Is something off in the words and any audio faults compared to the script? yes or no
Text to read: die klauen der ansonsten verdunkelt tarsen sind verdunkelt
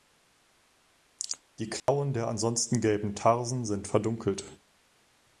yes